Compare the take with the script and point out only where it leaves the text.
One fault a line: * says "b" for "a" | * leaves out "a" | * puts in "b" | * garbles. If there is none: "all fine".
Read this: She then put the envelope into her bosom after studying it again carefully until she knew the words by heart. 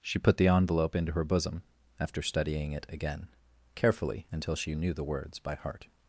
* leaves out "then"